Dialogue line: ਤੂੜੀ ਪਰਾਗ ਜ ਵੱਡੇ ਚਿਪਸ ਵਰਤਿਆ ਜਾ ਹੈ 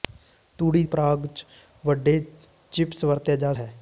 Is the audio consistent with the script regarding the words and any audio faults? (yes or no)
yes